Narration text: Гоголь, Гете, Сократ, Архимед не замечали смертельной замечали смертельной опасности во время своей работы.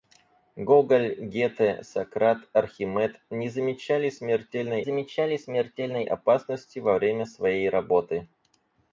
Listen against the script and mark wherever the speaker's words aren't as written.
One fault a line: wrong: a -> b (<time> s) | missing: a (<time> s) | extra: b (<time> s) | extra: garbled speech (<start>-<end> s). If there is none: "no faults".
no faults